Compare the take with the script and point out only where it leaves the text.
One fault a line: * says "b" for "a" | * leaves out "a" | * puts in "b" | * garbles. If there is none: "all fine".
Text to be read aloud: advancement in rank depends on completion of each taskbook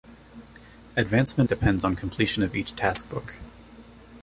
* leaves out "in rank"